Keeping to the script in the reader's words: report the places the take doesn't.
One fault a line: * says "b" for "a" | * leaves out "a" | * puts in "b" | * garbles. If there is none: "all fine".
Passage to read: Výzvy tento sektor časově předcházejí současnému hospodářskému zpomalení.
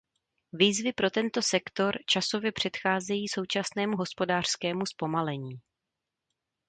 * puts in "pro"